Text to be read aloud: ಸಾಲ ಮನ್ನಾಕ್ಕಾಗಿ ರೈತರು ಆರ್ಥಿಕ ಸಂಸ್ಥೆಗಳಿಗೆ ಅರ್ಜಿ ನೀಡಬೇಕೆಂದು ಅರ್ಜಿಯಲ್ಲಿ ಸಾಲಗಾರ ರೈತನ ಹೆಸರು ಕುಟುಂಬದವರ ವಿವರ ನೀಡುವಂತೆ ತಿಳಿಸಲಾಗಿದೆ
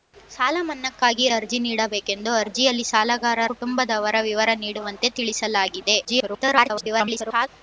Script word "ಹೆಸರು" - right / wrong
wrong